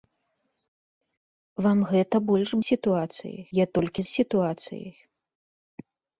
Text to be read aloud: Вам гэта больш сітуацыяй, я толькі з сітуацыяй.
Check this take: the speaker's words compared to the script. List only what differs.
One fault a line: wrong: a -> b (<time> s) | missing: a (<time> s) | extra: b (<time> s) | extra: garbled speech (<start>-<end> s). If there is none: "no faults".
no faults